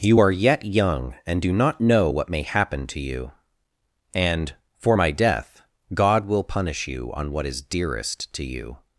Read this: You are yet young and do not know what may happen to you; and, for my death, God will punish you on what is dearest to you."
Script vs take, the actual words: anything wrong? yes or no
no